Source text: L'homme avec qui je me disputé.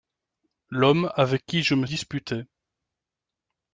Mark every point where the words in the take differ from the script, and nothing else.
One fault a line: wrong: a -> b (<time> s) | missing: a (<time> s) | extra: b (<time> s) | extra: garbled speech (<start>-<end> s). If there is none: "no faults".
no faults